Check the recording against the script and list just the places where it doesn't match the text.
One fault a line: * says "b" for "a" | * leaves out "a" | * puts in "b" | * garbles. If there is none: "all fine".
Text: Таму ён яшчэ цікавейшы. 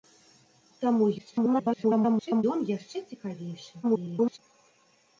* garbles
* garbles